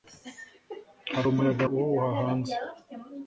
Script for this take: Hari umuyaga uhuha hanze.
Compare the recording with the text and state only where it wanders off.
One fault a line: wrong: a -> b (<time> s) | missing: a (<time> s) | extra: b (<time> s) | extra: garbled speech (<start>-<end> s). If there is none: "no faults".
no faults